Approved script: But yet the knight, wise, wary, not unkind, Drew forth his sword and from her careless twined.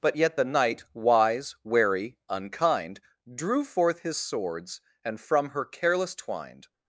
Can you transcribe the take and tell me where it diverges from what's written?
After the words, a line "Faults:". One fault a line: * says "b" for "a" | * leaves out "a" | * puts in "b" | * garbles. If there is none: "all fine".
But yet the knight, wise, wary, unkind, Drew forth his swords and from her careless twined.
Faults:
* leaves out "not"
* says "swords" for "sword"